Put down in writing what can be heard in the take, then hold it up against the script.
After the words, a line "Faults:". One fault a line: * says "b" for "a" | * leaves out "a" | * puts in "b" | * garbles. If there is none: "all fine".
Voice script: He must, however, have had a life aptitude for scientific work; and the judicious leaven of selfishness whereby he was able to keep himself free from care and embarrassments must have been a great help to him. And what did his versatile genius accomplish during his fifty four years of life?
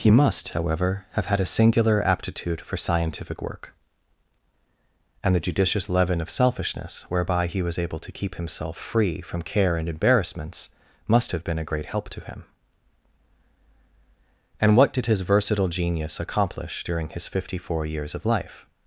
He must, however, have had a singular aptitude for scientific work; and the judicious leaven of selfishness whereby he was able to keep himself free from care and embarrassments must have been a great help to him. And what did his versatile genius accomplish during his fifty four years of life?
Faults:
* says "singular" for "life"